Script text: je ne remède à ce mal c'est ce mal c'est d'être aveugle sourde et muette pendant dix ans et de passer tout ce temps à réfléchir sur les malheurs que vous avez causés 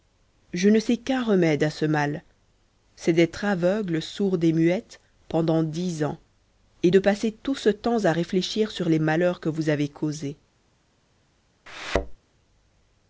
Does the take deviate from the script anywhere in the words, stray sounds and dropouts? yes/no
yes